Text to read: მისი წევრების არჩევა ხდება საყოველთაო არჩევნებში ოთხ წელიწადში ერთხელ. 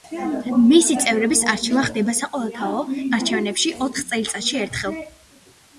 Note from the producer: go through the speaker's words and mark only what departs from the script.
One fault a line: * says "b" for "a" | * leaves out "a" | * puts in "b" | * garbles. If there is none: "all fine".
all fine